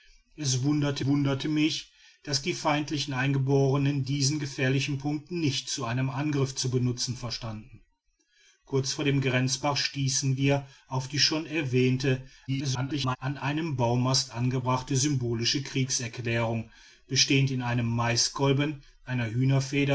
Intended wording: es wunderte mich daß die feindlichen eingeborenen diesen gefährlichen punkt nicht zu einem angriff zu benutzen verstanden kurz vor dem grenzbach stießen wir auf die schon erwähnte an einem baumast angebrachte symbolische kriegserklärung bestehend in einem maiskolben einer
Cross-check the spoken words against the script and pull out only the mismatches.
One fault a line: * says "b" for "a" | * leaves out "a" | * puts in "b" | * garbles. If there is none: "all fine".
* puts in "wunderte"
* garbles